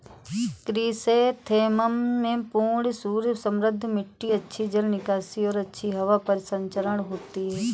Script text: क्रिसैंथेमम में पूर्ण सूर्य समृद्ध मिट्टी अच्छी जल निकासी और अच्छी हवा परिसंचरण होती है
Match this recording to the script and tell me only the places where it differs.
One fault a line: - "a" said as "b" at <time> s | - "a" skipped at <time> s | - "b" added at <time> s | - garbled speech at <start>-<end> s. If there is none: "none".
none